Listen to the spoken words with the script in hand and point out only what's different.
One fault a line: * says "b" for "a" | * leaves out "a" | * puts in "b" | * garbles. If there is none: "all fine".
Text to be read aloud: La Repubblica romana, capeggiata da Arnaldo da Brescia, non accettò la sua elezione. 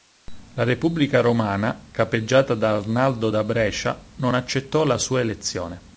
all fine